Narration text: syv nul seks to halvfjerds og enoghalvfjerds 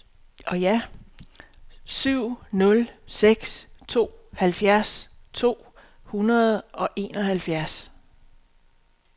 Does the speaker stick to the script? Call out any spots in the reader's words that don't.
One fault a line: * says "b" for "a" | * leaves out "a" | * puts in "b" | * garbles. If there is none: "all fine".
* puts in "to hundrede"